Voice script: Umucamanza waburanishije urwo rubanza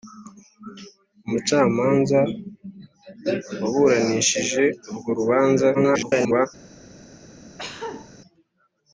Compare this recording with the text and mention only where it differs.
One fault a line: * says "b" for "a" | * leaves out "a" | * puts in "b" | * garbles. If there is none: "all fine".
* garbles